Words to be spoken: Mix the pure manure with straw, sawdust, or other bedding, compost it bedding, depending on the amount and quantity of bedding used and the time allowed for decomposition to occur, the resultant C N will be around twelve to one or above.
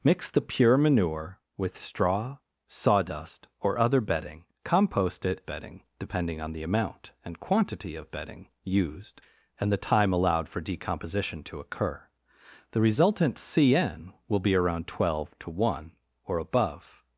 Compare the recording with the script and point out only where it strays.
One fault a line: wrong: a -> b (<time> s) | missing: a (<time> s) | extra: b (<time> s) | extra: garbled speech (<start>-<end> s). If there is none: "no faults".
no faults